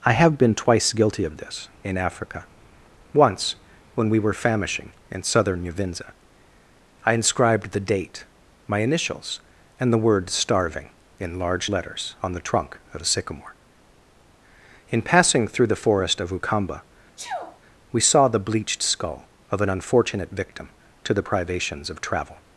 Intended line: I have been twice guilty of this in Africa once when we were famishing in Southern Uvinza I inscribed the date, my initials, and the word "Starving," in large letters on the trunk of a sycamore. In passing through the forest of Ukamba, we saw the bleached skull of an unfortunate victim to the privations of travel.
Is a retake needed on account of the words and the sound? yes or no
yes